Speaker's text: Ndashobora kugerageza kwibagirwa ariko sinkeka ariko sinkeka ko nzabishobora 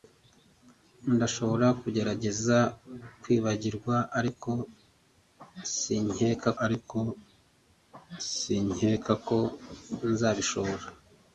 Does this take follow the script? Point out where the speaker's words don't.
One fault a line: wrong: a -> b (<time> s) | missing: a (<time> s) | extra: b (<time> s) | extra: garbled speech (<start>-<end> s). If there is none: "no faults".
no faults